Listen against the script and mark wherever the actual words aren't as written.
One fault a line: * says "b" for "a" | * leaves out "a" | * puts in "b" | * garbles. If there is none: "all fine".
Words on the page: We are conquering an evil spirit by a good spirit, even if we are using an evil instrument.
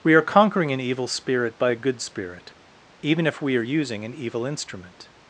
all fine